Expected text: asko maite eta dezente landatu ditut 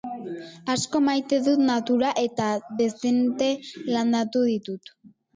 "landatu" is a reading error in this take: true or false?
false